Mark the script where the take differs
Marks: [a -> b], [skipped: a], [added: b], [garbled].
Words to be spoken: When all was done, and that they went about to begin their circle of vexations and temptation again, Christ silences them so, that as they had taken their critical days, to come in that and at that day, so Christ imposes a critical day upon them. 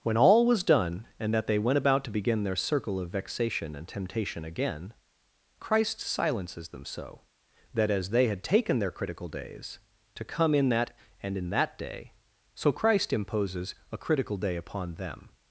When all was done, and that they went about to begin their circle of [vexations -> vexation] and temptation again, Christ silences them so, that as they had taken their critical days, to come in that and [at -> in] that day, so Christ imposes a critical day upon them.